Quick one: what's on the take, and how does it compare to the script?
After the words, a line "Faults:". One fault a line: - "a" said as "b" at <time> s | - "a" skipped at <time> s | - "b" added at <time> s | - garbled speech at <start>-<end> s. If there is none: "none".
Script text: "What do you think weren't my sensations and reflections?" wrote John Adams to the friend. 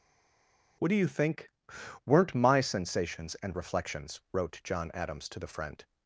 "What do you think weren't my sensations and reflections?" wrote John Adams to the friend.
Faults:
none